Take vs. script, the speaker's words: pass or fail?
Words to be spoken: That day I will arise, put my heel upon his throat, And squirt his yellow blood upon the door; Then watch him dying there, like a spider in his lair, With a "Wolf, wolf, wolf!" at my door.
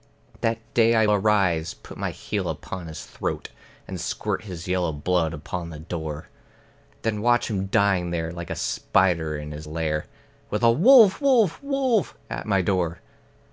fail